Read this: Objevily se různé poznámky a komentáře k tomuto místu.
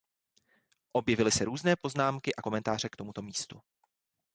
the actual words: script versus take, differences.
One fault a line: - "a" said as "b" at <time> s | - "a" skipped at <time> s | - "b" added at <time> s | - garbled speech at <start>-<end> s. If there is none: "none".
none